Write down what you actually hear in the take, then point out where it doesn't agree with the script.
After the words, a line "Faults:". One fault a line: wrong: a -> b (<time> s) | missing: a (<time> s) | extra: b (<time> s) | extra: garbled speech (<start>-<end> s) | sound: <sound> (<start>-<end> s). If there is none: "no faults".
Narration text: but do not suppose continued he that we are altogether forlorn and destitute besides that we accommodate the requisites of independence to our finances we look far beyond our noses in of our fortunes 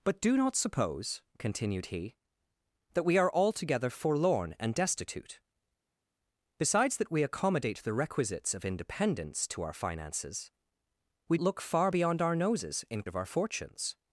but do not suppose continued he that we are altogether forlorn and destitute besides that we accommodate the requisites of independence to our finances we look far beyond our noses in of our fortunes
Faults:
no faults